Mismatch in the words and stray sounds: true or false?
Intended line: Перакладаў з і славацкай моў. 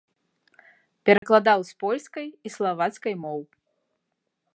true